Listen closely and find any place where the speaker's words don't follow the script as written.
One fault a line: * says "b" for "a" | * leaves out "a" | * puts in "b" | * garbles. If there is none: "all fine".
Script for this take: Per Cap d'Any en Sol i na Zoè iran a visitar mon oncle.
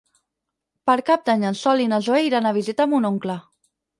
all fine